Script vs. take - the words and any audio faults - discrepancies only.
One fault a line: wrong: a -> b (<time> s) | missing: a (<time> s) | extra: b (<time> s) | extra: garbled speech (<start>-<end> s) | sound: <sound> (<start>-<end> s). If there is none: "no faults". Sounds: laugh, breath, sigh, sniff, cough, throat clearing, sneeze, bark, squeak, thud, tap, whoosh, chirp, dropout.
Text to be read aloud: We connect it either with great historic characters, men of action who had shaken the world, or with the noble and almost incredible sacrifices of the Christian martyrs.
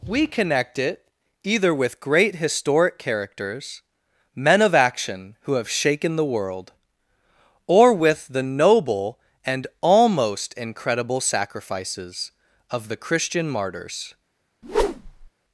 wrong: had -> have (5.5 s)
sound: whoosh (14.6-15.3 s)